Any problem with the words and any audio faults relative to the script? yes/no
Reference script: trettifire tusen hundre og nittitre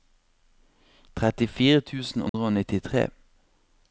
yes